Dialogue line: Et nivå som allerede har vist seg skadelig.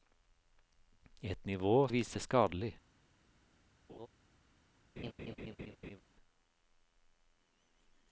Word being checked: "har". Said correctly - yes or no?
no